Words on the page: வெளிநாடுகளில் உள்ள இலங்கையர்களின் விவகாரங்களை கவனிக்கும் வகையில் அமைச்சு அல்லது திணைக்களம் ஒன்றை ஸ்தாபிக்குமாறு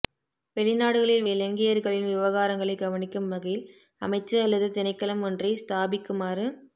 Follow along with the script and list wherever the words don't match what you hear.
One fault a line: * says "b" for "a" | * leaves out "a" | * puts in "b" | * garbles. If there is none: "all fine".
* leaves out "உள்ள"